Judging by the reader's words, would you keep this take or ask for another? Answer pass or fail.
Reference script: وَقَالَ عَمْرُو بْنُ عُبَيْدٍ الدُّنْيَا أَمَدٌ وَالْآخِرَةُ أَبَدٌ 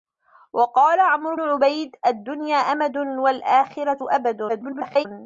fail